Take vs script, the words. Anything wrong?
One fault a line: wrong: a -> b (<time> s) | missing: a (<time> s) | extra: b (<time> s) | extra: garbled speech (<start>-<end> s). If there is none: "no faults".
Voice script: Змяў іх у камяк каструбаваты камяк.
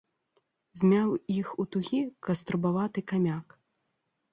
wrong: камяк -> тугі (1.7 s)